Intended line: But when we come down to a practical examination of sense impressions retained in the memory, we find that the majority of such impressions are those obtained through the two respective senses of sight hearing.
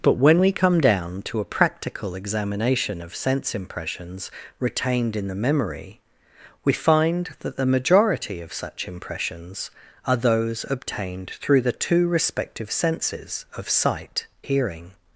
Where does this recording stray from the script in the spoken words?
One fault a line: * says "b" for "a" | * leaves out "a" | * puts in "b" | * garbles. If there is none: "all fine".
all fine